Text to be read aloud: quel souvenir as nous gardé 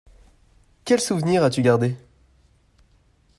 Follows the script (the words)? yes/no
no